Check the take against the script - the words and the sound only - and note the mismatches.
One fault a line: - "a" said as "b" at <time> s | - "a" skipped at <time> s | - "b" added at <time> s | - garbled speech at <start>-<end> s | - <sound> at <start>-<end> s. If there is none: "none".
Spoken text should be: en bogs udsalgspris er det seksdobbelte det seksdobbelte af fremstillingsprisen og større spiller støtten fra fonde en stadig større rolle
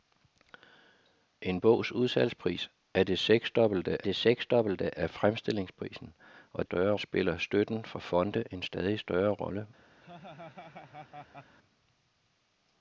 - laugh at 10.0-11.6 s